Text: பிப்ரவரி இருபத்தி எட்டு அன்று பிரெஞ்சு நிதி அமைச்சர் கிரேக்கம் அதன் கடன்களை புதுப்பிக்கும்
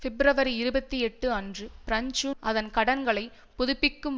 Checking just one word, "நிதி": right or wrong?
wrong